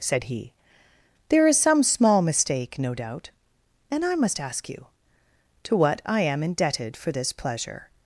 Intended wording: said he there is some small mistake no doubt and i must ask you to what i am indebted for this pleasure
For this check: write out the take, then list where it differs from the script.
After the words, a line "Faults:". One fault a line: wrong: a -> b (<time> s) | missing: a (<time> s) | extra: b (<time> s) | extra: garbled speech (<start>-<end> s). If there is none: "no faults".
said he there is some small mistake no doubt and i must ask you to what i am indebted for this pleasure
Faults:
no faults